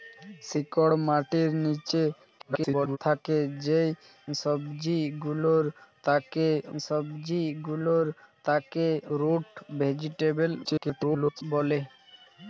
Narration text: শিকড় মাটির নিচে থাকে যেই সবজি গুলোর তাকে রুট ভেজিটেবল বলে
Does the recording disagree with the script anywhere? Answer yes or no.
yes